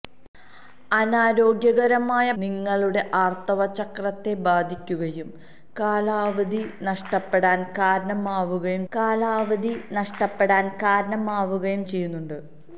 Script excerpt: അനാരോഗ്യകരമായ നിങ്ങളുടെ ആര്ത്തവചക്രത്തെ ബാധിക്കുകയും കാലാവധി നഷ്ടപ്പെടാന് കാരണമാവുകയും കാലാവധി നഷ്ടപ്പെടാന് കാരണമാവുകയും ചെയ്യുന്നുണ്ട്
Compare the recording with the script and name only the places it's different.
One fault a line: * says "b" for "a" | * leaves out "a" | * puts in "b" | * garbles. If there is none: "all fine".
all fine